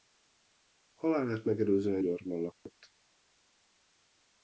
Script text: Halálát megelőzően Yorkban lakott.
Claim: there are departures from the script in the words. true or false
false